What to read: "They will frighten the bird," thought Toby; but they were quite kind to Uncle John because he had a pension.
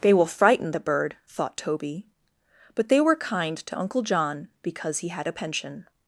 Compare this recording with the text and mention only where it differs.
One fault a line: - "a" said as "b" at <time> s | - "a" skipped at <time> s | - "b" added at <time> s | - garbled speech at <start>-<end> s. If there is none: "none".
- "quite" skipped at 3.1 s